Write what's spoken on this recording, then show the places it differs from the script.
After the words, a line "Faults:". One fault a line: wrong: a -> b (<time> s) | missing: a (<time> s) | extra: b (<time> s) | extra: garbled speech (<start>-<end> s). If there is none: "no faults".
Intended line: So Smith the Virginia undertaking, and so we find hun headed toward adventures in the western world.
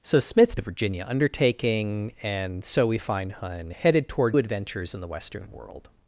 So Smith the Virginia undertaking, and so we find hun headed toward adventures in the western world.
Faults:
no faults